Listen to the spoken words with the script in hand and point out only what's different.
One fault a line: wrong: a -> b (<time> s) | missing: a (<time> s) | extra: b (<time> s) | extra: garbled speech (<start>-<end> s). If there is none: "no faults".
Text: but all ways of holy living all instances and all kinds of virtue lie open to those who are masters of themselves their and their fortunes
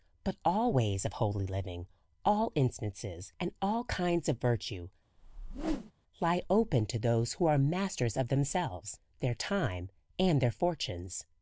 extra: time (9.3 s)